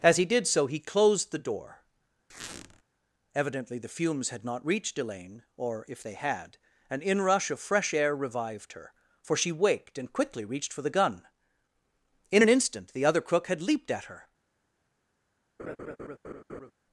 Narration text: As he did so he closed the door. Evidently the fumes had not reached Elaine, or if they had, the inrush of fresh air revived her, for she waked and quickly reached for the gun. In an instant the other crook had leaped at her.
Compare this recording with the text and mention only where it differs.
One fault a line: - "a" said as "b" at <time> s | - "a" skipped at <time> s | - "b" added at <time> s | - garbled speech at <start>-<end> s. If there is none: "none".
- "the" said as "an" at 6.9 s